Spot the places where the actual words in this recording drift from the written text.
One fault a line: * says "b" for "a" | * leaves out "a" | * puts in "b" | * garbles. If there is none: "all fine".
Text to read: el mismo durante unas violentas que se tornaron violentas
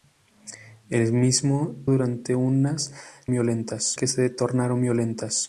all fine